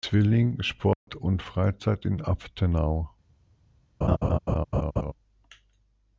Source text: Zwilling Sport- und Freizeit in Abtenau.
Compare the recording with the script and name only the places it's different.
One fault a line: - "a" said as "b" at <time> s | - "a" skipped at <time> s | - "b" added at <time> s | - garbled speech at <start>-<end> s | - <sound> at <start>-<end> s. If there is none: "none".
- dropout at 0.9-1.1 s
- laugh at 4.0-5.1 s